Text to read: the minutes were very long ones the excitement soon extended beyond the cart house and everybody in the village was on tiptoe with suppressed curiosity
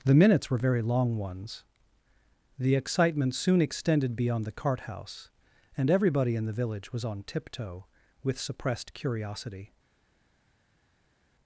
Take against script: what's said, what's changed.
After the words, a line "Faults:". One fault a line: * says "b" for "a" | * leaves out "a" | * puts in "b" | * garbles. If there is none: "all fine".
the minutes were very long ones the excitement soon extended beyond the cart house and everybody in the village was on tiptoe with suppressed curiosity
Faults:
all fine